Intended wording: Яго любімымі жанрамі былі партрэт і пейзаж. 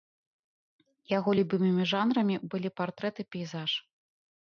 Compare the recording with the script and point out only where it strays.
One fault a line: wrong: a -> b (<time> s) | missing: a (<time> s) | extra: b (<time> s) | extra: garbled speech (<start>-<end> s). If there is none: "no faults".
no faults